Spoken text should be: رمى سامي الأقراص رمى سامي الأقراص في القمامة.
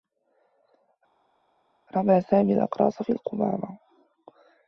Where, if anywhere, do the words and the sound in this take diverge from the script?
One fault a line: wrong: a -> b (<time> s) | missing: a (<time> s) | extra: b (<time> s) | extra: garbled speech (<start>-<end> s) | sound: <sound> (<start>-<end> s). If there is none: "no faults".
missing: رمى سامي الأقراص (3.0 s)